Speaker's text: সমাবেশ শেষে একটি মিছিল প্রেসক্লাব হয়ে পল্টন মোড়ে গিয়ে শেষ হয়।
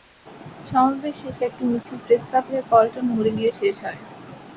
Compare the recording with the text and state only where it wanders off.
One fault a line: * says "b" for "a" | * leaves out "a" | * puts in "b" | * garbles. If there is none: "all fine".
all fine